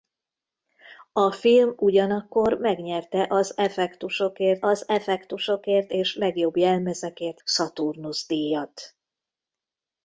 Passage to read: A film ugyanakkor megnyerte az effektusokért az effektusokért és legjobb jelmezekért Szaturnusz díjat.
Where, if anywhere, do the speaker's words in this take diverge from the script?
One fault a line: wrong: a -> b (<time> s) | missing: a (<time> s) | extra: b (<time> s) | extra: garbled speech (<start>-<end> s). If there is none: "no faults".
no faults